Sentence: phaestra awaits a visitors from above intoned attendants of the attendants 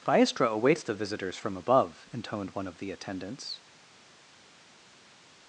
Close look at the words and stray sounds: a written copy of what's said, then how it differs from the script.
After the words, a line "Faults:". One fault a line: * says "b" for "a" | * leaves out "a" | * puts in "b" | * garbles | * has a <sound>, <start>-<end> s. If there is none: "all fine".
phaestra awaits the visitors from above intoned one of the attendants
Faults:
* says "the" for "a"
* says "one" for "attendants"